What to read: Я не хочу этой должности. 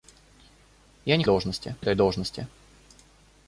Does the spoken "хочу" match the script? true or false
false